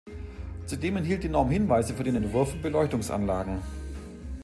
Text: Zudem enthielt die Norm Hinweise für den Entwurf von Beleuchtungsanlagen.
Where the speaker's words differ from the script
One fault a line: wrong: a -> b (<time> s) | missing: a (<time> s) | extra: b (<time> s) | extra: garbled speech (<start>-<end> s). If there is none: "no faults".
no faults